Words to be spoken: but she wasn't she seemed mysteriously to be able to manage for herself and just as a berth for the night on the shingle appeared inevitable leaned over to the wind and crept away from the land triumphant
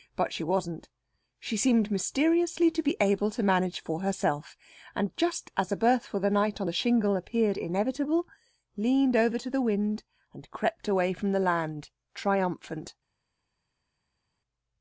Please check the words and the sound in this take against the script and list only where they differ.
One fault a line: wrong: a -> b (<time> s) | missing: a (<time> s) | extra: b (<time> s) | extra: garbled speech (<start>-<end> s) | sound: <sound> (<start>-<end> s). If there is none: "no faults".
no faults